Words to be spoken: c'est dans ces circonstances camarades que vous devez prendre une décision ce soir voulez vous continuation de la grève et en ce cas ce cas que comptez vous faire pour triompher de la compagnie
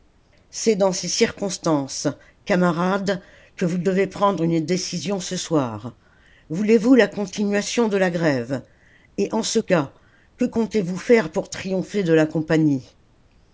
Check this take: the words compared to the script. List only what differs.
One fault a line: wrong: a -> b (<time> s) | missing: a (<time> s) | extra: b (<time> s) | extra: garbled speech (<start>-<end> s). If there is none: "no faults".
extra: la (6.9 s)
missing: ce cas (9.9 s)